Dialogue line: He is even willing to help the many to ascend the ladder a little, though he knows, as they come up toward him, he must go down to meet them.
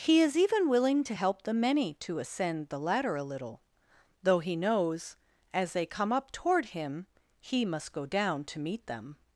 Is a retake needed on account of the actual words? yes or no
no